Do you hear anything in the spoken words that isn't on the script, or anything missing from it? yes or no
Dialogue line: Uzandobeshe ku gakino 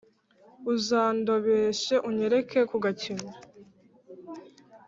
yes